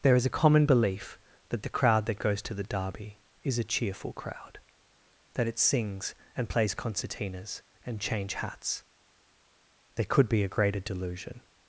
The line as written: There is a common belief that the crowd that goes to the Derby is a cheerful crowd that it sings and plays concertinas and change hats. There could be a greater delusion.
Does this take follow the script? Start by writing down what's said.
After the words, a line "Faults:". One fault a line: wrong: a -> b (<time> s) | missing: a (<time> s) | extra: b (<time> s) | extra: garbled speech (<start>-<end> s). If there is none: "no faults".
There is a common belief that the crowd that goes to the Derby is a cheerful crowd that it sings and plays concertinas and change hats. There could be a greater delusion.
Faults:
no faults